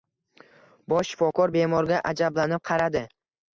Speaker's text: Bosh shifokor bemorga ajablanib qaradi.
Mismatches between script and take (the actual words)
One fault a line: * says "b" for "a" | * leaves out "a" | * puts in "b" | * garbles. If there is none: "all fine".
all fine